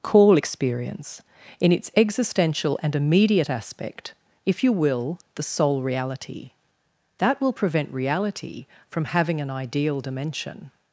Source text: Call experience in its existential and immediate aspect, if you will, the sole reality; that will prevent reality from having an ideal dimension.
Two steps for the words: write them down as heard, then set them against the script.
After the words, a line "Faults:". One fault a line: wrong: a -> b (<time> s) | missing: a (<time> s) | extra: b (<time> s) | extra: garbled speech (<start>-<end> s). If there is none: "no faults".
Call experience in its existential and immediate aspect, if you will, the sole reality; that will prevent reality from having an ideal dimension.
Faults:
no faults